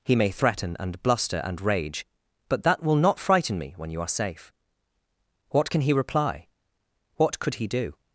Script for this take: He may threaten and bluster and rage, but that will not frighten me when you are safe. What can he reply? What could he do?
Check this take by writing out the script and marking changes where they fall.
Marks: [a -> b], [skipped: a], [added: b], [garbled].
He may threaten and bluster and rage, but that will not frighten me when you are safe. What can he reply? What could he do?